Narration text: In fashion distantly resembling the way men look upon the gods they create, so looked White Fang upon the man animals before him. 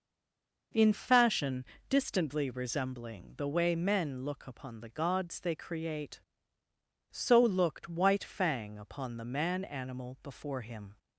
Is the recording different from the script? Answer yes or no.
yes